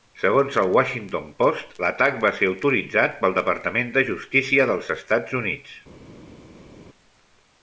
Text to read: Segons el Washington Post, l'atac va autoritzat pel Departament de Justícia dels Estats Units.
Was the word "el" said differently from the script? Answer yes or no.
no